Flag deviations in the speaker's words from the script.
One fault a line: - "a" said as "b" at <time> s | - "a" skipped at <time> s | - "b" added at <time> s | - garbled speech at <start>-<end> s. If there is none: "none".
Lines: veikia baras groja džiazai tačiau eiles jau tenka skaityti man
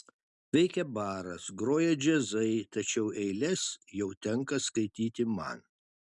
none